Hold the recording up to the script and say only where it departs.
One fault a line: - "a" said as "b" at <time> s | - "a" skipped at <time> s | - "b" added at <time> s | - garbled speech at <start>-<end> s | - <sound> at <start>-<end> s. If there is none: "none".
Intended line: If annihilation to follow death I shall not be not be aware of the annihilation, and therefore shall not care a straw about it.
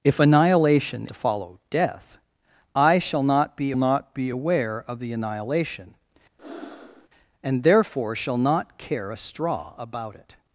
- breath at 6.4-7.1 s